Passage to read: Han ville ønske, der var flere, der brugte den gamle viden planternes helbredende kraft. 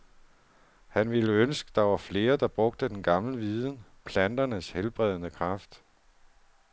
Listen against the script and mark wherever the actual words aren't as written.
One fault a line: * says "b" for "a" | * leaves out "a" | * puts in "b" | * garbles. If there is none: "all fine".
all fine